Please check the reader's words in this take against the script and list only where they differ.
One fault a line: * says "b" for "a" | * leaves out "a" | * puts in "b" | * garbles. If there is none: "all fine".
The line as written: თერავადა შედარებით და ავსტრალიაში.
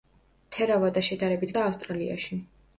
all fine